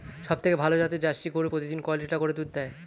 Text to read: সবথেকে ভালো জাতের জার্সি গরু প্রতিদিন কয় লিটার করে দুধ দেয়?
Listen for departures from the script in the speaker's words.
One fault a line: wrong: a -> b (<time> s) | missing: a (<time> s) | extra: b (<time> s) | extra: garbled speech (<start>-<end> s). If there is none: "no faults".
no faults